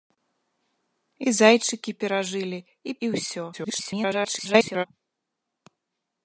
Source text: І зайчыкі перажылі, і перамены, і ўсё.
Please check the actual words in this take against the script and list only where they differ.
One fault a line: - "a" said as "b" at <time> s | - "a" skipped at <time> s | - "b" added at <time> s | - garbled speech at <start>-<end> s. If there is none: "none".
- "перамены" skipped at 2.9 s
- garbled speech at 3.5-4.9 s